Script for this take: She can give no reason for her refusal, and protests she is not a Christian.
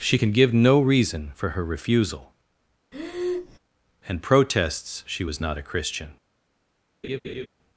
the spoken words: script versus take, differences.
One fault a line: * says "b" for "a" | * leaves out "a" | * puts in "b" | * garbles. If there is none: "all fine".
* says "was" for "is"